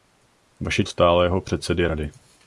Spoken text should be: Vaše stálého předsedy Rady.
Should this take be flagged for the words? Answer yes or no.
no